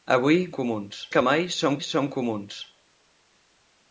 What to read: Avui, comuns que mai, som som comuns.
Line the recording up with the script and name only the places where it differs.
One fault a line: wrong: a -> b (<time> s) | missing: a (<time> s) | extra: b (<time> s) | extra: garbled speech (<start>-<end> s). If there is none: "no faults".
no faults